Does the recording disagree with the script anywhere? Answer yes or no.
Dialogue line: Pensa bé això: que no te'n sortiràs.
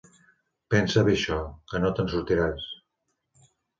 no